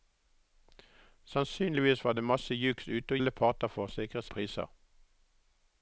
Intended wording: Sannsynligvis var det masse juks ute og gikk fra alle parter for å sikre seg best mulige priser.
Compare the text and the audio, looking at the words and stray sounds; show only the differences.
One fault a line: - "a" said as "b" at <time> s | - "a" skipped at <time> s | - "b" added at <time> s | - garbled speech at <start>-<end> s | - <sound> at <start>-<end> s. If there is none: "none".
- "gikk fra" skipped at 3.2 s
- "seg best mulige" skipped at 4.2 s